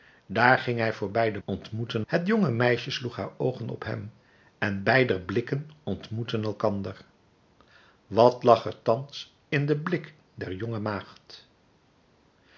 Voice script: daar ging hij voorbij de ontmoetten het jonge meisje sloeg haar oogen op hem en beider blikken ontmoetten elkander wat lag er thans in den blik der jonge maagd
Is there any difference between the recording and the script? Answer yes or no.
no